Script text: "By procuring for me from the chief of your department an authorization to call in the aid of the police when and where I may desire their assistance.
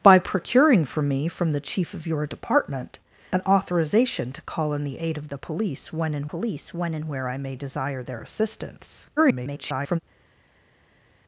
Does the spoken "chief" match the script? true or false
true